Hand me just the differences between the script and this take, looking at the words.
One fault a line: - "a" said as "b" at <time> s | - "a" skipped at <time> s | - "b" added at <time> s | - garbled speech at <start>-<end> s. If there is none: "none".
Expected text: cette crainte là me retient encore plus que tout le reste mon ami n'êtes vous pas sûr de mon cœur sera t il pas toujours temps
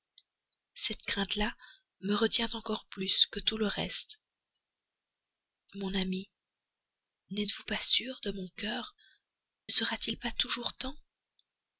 none